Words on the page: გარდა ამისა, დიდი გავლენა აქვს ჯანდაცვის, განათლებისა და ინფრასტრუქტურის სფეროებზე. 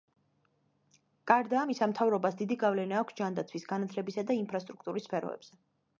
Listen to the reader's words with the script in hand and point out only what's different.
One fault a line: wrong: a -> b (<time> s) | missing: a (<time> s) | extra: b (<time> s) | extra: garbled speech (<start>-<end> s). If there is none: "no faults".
extra: მთავრობას (1.9 s)